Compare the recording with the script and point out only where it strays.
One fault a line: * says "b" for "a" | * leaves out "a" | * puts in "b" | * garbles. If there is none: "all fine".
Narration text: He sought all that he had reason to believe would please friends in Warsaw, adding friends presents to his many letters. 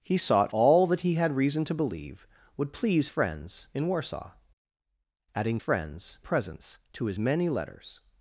all fine